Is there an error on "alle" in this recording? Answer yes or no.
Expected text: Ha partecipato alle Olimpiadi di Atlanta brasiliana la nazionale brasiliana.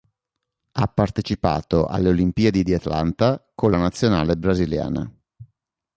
no